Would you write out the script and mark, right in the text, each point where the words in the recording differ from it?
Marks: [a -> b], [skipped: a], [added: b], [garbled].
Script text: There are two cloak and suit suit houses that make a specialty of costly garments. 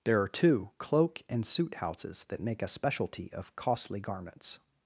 There are two cloak and suit [skipped: suit] houses that make a specialty of costly garments.